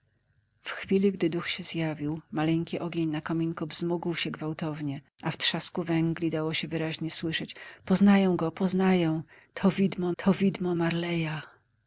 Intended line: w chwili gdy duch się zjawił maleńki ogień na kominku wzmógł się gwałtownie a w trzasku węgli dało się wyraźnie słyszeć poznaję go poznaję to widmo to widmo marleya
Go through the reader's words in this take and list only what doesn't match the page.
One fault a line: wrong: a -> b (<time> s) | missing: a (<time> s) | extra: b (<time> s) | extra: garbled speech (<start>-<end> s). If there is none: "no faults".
no faults